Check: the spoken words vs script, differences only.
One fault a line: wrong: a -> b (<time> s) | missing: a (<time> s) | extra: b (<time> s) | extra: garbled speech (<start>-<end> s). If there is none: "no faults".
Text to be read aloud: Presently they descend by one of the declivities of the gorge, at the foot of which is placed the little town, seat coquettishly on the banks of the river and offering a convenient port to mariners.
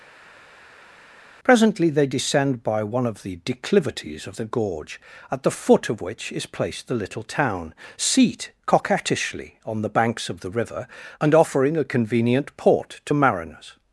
no faults